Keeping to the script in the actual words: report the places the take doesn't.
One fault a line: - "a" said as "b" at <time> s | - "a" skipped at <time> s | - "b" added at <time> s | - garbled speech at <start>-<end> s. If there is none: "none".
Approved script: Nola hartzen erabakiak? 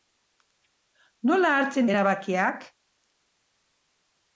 none